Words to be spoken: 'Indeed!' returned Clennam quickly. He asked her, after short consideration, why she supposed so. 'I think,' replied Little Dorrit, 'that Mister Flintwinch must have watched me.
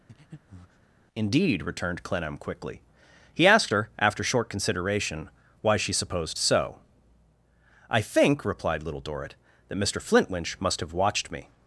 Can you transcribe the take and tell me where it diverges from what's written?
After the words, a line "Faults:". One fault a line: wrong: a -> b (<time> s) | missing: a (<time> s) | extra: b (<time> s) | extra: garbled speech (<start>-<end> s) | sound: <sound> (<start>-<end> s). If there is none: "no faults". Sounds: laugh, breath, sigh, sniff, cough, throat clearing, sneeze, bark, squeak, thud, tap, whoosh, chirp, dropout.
'Indeed!' returned Clennam quickly. He asked her, after short consideration, why she supposed so. 'I think,' replied Little Dorrit, 'that Mister Flintwinch must have watched me.
Faults:
sound: breath (0.1-0.9 s)